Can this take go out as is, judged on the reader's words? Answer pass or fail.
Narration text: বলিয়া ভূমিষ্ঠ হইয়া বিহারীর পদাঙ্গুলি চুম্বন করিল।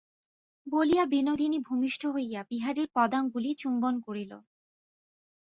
fail